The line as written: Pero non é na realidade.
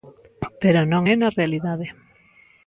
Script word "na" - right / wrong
right